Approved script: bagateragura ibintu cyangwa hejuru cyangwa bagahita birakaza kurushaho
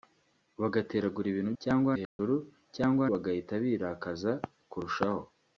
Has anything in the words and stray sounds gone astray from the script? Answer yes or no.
yes